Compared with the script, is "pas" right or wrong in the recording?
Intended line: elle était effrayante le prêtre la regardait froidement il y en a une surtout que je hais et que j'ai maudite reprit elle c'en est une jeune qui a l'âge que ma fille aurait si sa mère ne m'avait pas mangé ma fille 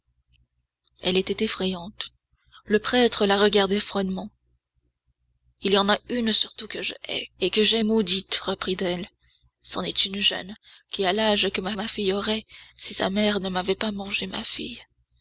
right